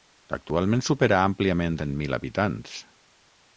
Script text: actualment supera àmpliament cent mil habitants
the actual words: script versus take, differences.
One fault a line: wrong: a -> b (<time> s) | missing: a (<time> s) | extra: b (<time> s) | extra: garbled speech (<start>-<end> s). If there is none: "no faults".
no faults